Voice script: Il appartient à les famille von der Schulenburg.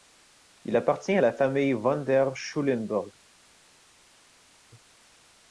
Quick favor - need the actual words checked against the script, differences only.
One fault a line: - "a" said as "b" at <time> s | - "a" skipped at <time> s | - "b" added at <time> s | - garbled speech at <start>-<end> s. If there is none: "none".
- "les" said as "la" at 1.2 s